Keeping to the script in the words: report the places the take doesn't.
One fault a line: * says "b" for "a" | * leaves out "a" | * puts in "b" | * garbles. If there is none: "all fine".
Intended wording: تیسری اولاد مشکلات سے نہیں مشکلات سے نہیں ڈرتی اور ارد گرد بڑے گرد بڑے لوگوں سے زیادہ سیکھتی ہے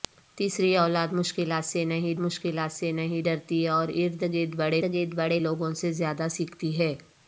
all fine